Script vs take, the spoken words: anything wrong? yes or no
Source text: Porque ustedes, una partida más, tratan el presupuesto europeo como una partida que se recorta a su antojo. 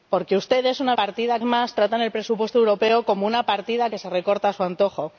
no